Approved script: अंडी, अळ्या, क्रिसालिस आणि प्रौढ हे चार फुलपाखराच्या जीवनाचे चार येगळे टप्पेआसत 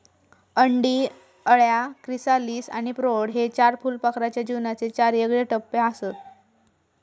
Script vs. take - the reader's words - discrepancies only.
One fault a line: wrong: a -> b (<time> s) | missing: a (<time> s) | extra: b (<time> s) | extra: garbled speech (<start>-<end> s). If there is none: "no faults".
no faults